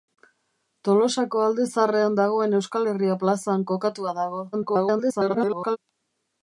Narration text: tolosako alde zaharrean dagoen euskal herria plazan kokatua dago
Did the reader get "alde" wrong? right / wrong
right